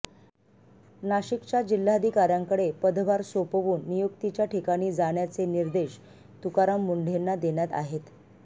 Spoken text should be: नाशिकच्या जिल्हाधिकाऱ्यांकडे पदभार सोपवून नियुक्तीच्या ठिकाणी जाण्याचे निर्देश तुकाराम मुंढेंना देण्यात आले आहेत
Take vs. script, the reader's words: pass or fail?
fail